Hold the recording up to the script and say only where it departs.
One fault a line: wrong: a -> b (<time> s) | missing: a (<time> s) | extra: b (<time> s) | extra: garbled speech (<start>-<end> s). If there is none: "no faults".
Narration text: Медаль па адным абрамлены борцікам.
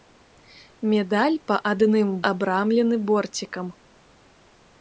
no faults